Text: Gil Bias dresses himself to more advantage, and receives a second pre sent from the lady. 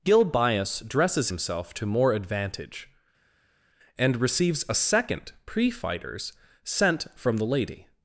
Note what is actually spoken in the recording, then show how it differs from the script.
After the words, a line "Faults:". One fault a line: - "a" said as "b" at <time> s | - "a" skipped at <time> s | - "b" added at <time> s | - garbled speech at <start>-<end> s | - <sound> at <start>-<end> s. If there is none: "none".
Gil Bias dresses himself to more advantage, and receives a second pre fighters sent from the lady.
Faults:
- "fighters" added at 5.7 s